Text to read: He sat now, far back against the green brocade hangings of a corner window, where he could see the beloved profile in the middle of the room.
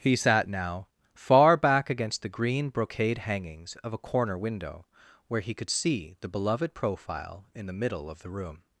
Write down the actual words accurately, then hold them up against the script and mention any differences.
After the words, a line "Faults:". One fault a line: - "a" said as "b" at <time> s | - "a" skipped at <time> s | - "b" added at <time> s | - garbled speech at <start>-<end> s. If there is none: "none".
He sat now, far back against the green brocade hangings of a corner window, where he could see the beloved profile in the middle of the room.
Faults:
none